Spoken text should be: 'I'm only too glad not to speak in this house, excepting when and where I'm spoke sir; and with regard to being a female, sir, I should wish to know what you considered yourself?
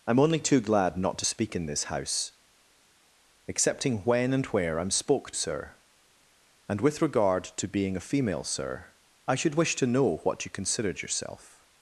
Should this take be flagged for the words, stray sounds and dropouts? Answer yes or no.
no